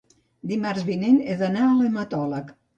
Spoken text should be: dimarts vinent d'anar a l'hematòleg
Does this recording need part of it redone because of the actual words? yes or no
yes